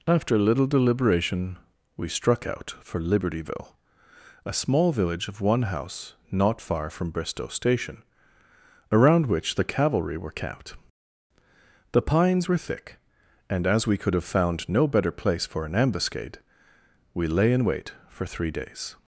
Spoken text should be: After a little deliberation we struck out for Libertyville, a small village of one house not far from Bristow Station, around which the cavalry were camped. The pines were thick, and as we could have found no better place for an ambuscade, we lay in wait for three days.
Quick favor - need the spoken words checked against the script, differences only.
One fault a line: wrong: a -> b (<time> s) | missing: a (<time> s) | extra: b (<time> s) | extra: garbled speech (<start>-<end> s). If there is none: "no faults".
no faults